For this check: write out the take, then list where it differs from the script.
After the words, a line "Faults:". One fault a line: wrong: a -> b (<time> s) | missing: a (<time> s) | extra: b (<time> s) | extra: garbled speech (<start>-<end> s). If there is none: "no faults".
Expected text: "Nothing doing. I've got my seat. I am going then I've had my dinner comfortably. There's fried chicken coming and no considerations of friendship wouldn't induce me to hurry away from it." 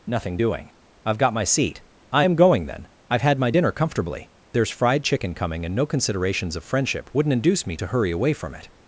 "Nothing doing. I've got my seat. I am going then I've had my dinner comfortably. There's fried chicken coming and no considerations of friendship wouldn't induce me to hurry away from it."
Faults:
no faults